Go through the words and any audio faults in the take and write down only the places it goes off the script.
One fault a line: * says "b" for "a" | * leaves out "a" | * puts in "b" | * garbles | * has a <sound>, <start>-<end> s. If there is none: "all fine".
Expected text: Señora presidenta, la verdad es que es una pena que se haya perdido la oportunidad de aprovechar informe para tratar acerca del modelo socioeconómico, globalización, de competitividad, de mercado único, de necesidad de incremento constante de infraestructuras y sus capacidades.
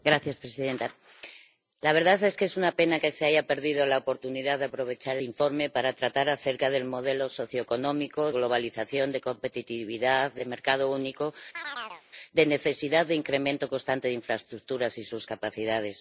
* has a chirp, 11.5-12.0 s